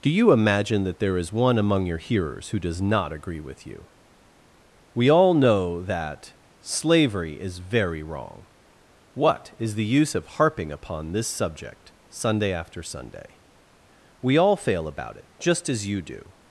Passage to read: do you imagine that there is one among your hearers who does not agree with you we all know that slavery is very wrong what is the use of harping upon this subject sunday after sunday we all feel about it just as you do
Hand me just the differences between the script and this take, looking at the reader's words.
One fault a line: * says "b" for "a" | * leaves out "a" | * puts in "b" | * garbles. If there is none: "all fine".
* says "fail" for "feel"